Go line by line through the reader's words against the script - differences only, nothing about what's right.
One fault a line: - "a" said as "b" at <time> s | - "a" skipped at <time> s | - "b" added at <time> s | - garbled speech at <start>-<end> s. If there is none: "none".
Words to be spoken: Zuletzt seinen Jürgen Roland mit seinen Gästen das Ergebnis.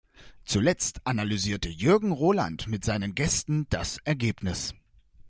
- "seinen" said as "analysierte" at 1.1 s